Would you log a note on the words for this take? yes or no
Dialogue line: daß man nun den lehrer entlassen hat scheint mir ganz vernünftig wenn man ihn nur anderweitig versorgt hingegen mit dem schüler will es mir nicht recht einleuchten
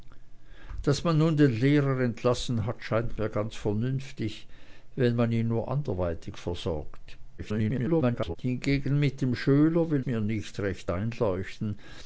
yes